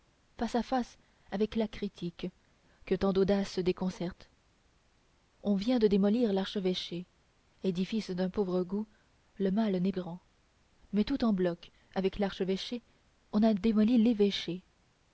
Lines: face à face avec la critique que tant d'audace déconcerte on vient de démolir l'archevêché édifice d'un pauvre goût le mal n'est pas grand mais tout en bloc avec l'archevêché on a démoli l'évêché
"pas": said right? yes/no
no